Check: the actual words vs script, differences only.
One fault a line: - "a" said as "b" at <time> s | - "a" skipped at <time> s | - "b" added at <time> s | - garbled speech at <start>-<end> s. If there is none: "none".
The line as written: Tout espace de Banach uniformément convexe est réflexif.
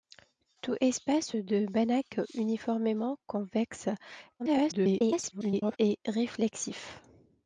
- garbled speech at 4.4-5.8 s